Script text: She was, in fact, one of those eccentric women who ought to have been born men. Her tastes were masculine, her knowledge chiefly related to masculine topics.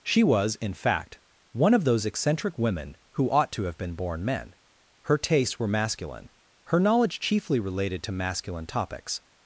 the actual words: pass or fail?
pass